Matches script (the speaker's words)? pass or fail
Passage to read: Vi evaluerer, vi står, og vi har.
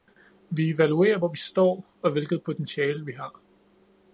fail